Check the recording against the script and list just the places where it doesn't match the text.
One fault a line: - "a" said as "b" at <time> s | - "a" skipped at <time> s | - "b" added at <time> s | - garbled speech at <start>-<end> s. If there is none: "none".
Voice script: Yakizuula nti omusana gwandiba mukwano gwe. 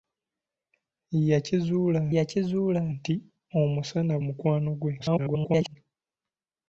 - "yakizuula" added at 2.1 s
- "gwandiba" skipped at 4.1 s
- garbled speech at 5.0-5.8 s